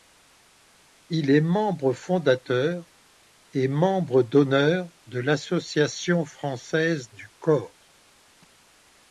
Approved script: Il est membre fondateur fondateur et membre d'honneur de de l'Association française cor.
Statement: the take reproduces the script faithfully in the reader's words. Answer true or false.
false